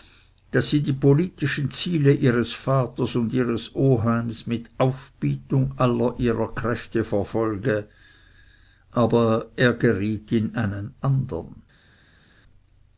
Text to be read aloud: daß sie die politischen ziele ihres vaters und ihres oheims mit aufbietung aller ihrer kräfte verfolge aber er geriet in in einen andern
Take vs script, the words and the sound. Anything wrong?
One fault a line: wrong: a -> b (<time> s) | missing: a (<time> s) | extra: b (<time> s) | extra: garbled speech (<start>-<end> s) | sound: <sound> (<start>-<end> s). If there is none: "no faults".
missing: in (10.6 s)